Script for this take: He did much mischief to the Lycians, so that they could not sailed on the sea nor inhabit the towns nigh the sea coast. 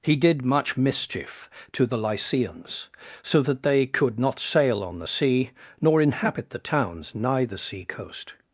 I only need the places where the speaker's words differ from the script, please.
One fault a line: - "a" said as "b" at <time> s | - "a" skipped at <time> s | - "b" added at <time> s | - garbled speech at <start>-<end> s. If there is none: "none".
- "sailed" said as "sail" at 4.4 s